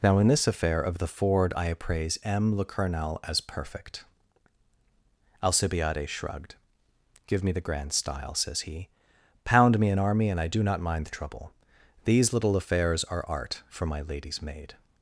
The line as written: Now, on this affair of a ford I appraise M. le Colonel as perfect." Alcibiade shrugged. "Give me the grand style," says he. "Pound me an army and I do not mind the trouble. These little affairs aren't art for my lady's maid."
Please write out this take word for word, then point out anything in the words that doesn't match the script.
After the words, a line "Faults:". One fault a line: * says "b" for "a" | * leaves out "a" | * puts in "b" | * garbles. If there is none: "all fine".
Now, in this affair of the ford I appraise M. le Colonel as perfect." Alcibiade shrugged. "Give me the grand style," says he. "Pound me an army and I do not mind the trouble. These little affairs are art for my lady's maid."
Faults:
* says "in" for "on"
* says "the" for "a"
* says "are" for "aren't"